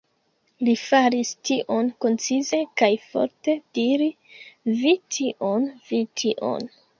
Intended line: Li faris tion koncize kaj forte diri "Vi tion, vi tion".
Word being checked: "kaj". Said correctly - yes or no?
yes